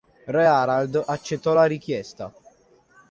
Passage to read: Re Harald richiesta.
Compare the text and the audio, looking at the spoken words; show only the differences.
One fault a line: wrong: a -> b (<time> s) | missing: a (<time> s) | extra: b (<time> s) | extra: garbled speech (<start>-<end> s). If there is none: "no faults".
extra: accettò la (1.1 s)